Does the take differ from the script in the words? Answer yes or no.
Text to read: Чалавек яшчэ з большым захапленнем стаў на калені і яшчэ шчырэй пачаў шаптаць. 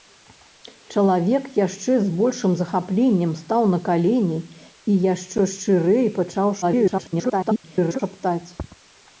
yes